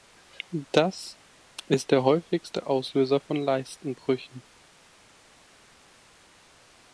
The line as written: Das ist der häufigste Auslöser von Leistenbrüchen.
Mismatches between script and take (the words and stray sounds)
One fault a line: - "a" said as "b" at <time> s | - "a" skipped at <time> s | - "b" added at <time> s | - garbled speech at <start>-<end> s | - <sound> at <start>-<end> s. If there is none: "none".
none